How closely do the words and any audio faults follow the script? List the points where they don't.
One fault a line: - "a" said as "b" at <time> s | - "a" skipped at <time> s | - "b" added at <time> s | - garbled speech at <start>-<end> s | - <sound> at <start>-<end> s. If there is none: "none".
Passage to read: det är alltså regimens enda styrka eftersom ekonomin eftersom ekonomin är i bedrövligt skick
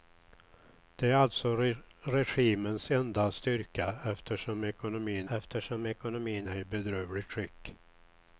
none